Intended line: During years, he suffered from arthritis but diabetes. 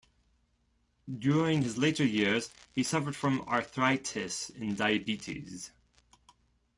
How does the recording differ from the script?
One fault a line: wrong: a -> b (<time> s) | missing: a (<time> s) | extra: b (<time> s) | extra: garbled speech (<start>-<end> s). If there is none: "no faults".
extra: his later (1.6 s)
wrong: but -> and (4.5 s)